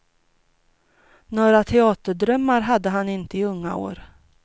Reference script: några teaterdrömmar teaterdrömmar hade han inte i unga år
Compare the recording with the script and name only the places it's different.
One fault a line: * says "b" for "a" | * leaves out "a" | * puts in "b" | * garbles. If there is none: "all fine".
* leaves out "teaterdrömmar"